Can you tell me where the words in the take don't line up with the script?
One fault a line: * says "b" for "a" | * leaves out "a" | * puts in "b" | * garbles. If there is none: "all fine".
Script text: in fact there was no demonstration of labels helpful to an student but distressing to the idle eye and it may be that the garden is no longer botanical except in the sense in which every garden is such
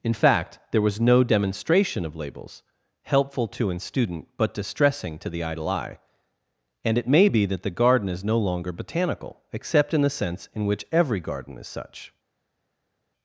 all fine